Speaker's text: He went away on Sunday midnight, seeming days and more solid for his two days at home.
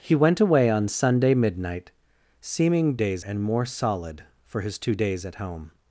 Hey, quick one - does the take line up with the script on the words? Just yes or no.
yes